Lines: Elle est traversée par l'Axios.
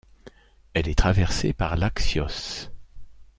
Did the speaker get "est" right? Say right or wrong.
right